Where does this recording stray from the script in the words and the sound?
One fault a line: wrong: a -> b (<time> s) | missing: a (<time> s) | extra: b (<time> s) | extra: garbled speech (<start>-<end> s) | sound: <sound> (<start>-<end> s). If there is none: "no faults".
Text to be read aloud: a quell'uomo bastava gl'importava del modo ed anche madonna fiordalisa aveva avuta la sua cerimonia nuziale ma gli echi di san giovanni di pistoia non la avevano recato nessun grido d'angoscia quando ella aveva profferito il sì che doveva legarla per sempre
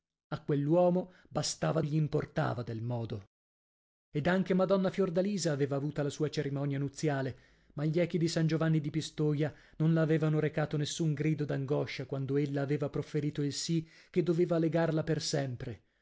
no faults